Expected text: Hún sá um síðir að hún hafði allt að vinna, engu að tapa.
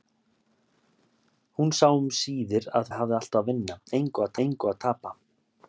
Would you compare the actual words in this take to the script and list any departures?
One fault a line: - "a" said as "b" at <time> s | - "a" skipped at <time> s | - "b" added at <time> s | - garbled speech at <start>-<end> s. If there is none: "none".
- "hún" skipped at 2.9 s
- "engu að" added at 4.5 s